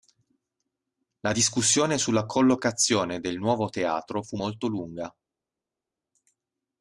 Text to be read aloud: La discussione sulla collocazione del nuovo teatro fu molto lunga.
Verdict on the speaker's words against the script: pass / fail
pass